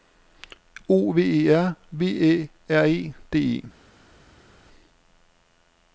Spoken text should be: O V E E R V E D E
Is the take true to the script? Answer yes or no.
no